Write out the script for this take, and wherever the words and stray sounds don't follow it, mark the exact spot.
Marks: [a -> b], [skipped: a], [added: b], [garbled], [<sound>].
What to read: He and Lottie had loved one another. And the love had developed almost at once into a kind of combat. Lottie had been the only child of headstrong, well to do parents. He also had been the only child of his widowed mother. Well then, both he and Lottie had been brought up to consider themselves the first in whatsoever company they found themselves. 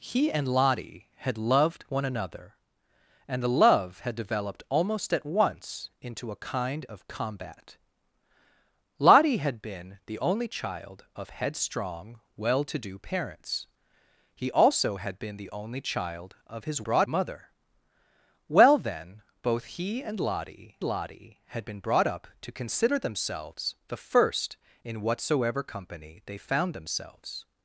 He and Lottie had loved one another. And the love had developed almost at once into a kind of combat. Lottie had been the only child of headstrong, well to do parents. He also had been the only child of his [widowed -> brought] mother. Well then, both he and Lottie [added: Lottie] had been brought up to consider themselves the first in whatsoever company they found themselves.